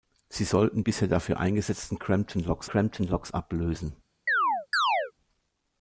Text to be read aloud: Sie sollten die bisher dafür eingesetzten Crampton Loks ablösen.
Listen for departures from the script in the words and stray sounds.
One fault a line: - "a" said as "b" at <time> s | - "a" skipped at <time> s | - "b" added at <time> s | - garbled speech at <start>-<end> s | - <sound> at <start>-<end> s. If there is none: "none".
- "die" skipped at 0.8 s
- "Crampton Loks" added at 2.6 s
- chirp at 4.3-5.1 s